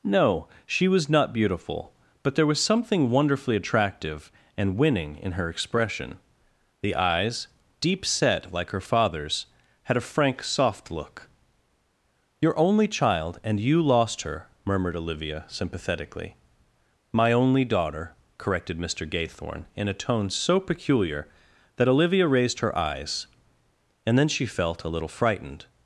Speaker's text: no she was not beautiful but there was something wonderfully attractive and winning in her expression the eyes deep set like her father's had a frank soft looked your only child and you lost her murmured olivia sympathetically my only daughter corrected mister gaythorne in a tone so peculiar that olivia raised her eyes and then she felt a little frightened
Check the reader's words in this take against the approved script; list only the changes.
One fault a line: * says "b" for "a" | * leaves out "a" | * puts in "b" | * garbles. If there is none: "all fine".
* says "look" for "looked"